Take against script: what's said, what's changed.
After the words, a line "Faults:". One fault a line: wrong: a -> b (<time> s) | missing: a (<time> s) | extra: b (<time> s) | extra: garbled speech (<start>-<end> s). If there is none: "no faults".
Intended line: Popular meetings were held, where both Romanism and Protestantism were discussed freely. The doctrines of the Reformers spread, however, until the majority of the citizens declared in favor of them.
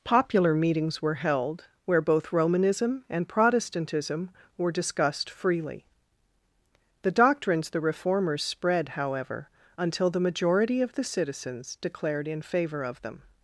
Popular meetings were held, where both Romanism and Protestantism were discussed freely. The doctrines the Reformers spread, however, until the majority of the citizens declared in favor of them.
Faults:
missing: of (7.7 s)